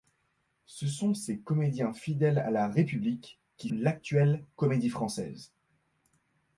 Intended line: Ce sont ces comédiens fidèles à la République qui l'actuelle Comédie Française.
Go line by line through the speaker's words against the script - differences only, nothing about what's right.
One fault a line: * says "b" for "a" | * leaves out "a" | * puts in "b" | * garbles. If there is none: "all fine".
all fine